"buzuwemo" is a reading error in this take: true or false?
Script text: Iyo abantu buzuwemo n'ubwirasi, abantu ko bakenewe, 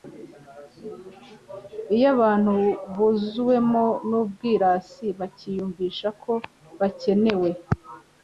false